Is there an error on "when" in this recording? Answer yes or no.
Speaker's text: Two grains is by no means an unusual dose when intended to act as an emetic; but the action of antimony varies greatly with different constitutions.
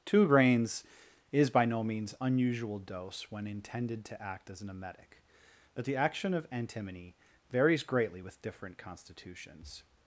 no